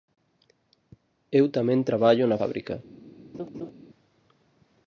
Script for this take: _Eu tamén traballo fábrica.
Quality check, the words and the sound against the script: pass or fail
fail